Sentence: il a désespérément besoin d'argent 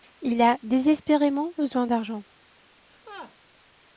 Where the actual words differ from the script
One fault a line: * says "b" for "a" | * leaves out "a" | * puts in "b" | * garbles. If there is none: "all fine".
all fine